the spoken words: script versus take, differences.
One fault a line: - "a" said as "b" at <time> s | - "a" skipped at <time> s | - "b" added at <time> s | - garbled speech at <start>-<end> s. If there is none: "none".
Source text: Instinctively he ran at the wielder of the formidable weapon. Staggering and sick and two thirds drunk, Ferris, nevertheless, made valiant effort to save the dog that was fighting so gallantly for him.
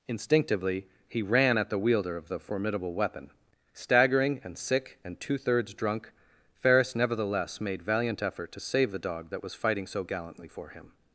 none